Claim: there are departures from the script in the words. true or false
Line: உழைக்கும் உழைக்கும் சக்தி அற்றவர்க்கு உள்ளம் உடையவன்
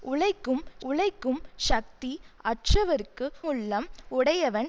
false